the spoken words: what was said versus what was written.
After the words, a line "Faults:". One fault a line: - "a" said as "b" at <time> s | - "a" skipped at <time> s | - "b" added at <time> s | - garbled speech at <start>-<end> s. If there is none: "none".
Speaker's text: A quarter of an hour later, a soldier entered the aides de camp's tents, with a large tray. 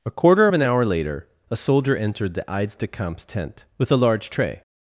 A quarter of an hour later, a soldier entered the aides de camp's tent, with a large tray.
Faults:
- "tents" said as "tent" at 3.2 s